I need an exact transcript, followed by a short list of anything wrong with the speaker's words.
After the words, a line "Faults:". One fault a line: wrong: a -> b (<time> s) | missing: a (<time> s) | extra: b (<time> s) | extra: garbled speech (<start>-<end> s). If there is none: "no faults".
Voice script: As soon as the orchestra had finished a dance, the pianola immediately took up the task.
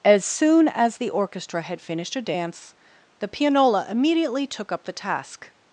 As soon as the orchestra had finished a dance, the pianola immediately took up the task.
Faults:
no faults